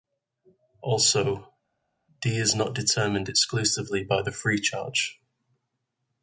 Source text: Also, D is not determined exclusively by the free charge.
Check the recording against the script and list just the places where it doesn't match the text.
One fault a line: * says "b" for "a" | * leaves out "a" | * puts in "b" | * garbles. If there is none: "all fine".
all fine